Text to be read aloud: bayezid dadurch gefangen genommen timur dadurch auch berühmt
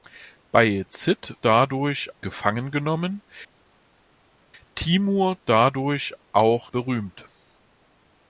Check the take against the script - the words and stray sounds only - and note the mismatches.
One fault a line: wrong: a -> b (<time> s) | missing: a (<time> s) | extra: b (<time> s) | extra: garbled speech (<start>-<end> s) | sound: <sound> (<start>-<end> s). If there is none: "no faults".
no faults